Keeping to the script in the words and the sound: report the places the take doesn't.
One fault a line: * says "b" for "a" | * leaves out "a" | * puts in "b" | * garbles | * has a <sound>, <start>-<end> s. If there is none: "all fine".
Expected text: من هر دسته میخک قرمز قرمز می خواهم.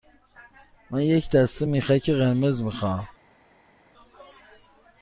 * says "یک" for "هر"
* leaves out "قرمز"